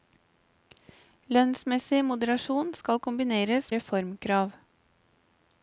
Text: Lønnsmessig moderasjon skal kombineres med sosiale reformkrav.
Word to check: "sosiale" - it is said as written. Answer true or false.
false